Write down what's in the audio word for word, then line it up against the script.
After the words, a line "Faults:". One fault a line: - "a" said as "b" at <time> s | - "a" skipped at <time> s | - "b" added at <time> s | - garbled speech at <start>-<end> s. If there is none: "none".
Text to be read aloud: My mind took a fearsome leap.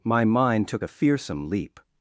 My mind took a fearsome leap.
Faults:
none